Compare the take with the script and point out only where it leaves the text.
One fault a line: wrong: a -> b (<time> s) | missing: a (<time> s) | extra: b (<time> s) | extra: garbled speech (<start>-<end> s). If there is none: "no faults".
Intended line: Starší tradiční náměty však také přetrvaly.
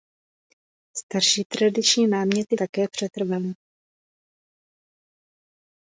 missing: však (2.6 s)